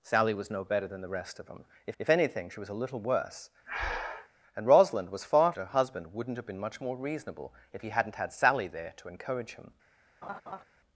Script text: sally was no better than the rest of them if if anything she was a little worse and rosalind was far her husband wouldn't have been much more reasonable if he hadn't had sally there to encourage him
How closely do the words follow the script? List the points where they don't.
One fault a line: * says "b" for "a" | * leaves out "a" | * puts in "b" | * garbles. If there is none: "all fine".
all fine